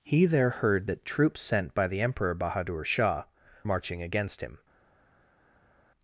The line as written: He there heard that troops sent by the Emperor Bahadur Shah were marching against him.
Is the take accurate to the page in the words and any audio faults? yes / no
no